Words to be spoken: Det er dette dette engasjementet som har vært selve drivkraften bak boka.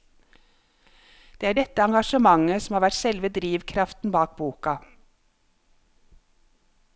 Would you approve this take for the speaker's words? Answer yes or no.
no